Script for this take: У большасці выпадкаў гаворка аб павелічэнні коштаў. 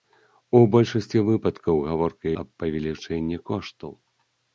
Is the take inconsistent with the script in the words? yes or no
no